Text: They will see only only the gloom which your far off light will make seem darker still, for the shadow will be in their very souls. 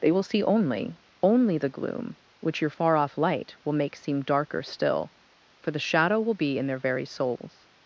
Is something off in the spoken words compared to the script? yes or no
no